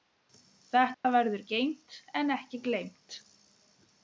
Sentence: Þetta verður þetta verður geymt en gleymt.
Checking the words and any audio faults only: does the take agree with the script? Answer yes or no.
no